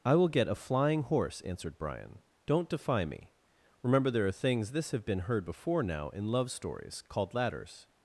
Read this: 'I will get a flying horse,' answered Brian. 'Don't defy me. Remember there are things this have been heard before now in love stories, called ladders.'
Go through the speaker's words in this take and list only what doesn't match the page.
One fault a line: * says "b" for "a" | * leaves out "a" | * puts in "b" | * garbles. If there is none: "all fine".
all fine